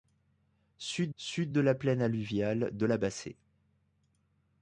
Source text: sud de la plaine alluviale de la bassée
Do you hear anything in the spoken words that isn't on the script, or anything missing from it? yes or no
yes